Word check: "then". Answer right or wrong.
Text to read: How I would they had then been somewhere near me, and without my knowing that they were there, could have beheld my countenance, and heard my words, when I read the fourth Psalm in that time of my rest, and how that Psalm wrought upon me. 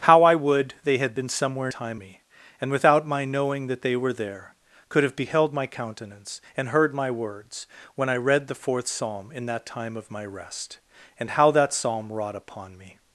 wrong